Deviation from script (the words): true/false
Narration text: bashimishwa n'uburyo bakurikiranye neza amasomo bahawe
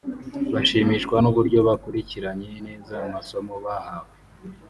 false